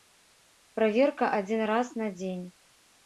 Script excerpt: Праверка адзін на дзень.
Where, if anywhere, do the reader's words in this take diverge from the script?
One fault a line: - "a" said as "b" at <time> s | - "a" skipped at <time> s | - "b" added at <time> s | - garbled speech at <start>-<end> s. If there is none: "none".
- "раз" added at 1.7 s